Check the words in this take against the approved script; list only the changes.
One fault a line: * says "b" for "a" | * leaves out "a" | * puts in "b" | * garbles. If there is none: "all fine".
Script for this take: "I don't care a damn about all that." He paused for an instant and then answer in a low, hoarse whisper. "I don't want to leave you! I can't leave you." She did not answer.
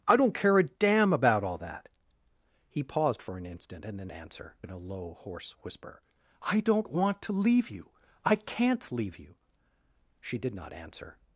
all fine